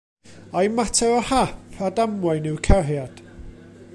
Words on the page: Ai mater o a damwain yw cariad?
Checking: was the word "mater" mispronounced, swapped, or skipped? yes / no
no